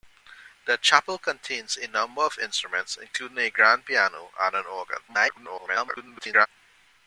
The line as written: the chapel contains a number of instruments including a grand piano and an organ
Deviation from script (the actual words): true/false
true